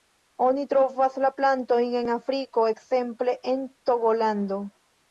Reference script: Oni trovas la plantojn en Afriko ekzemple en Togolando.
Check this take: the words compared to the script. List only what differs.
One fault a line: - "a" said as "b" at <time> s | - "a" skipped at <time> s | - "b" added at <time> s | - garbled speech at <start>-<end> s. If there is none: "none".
none